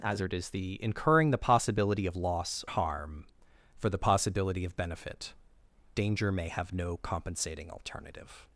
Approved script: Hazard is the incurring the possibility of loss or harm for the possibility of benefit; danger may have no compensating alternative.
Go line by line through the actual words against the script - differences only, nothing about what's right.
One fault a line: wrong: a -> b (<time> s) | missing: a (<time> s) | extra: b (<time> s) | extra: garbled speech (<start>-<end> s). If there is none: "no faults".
missing: or (2.6 s)